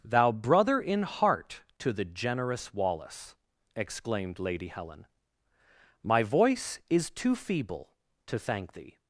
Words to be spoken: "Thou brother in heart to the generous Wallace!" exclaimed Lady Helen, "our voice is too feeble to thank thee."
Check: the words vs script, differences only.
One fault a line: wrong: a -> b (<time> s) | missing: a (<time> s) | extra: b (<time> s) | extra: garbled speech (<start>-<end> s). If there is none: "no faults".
wrong: our -> my (6.0 s)